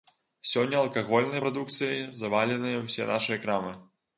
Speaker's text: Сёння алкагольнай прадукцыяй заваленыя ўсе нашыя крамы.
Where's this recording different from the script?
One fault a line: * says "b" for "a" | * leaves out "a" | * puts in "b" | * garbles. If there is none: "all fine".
all fine